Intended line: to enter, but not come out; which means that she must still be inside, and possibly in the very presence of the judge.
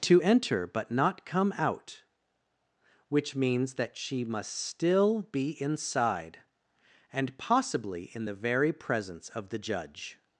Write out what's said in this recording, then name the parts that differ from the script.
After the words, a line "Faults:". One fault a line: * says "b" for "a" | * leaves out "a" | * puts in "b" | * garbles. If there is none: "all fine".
to enter, but not come out; which means that she must still be inside, and possibly in the very presence of the judge.
Faults:
all fine